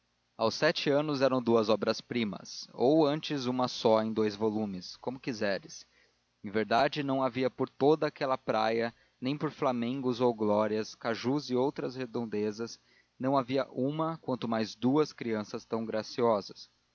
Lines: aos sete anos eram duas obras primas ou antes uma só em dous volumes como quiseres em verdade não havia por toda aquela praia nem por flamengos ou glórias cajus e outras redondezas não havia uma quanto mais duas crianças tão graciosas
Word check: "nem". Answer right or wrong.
right